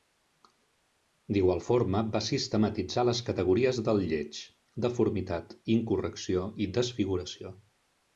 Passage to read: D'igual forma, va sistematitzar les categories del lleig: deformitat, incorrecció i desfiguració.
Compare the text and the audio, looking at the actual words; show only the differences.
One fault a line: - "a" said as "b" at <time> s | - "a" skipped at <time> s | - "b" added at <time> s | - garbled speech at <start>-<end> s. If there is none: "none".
none